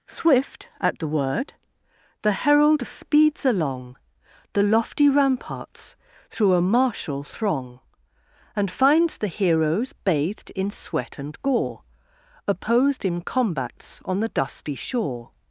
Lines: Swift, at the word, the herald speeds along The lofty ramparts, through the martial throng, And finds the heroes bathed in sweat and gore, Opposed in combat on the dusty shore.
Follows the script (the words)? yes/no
no